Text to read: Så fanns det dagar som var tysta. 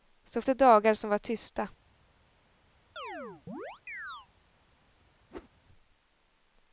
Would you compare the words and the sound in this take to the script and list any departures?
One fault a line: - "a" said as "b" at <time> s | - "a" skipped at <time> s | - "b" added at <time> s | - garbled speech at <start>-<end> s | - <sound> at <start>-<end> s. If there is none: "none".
- "fanns" skipped at 0.4 s
- chirp at 3.0-4.3 s
- whoosh at 5.3-5.5 s